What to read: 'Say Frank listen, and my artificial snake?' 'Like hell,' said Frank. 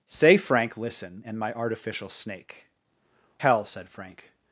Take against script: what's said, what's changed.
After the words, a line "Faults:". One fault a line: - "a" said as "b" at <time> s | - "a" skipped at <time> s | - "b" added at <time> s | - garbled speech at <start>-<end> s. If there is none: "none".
'Say Frank listen, and my artificial snake?' 'Hell,' said Frank.
Faults:
- "Like" skipped at 2.6 s